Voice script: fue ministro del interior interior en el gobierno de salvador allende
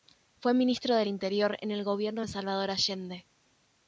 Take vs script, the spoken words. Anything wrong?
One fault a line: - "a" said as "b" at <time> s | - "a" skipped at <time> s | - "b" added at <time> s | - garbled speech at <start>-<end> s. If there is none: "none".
- "interior" skipped at 1.6 s